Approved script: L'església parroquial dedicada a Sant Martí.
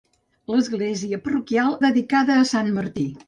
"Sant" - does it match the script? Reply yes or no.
yes